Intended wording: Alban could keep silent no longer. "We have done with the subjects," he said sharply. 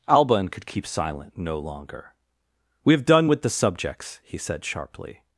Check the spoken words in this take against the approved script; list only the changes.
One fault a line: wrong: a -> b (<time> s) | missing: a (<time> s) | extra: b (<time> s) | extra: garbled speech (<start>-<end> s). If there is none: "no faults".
no faults